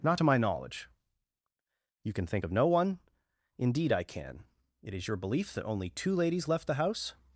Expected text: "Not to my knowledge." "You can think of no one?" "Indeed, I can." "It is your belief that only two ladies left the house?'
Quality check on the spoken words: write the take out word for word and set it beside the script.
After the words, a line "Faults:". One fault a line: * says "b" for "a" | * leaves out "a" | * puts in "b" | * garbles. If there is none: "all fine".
"Not to my knowledge." "You can think of no one?" "Indeed, I can." "It is your belief that only two ladies left the house?'
Faults:
all fine